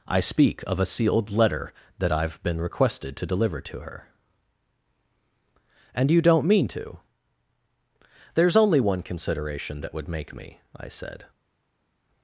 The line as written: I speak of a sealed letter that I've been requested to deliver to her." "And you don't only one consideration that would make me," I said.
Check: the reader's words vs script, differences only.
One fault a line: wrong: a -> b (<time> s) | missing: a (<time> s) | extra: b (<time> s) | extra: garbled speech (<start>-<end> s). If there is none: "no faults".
extra: mean to There's (6.5 s)